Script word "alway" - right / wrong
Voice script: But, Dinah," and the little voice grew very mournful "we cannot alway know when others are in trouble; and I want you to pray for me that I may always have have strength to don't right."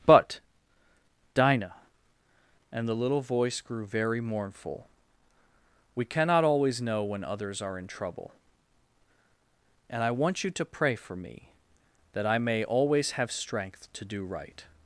wrong